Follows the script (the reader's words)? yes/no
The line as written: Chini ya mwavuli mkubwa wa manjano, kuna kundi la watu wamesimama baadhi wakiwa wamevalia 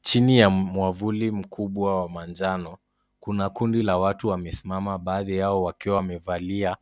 no